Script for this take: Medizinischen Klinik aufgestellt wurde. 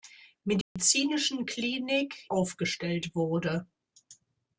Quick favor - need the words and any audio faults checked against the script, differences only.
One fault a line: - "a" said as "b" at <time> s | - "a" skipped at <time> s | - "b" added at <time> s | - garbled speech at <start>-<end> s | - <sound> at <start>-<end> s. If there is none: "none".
- dropout at 0.6-0.8 s